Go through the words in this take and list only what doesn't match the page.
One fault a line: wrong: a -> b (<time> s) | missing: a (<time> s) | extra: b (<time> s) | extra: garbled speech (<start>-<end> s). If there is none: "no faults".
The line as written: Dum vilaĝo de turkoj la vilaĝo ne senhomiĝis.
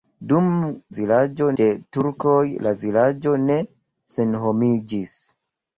no faults